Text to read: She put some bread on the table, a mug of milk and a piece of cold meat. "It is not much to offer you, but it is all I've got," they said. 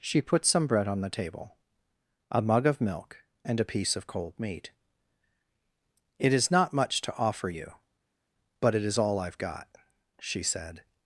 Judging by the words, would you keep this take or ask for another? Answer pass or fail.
fail